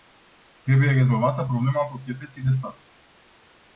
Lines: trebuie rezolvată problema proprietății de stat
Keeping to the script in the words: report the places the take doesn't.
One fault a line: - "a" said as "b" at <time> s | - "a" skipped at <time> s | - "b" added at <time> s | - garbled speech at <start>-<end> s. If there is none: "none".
none